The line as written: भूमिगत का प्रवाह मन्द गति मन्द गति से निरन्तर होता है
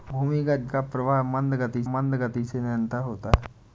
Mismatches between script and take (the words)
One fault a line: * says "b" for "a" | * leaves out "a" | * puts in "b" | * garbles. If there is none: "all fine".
all fine